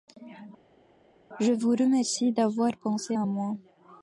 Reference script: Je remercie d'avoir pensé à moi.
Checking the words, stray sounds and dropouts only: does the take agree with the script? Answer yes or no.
no